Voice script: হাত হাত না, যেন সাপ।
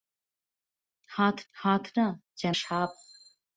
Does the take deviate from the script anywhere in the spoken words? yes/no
no